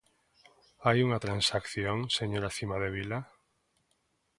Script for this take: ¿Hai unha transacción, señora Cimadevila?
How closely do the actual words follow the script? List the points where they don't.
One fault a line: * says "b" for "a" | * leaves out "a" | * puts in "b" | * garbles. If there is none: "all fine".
all fine